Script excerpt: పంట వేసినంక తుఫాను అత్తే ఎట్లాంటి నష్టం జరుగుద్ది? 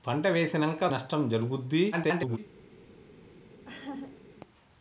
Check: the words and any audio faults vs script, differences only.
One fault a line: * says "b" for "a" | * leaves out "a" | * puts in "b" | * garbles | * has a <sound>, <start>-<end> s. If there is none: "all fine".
* leaves out "తుఫాను అత్తే ఎట్లాంటి"
* garbles
* has a laugh, 3.6-4.2 s